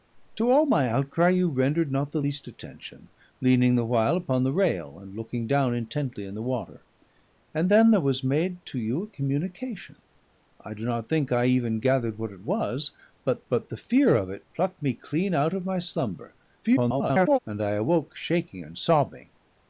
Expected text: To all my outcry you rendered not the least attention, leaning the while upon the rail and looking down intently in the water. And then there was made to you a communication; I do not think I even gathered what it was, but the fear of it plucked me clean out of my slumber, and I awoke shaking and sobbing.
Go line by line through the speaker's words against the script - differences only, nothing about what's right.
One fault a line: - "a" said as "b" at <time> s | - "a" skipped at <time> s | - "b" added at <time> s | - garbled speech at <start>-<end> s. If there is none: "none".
- "but" added at 13.5 s
- garbled speech at 16.6-17.4 s